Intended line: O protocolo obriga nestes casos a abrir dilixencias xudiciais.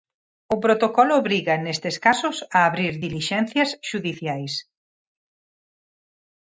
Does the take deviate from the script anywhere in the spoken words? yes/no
no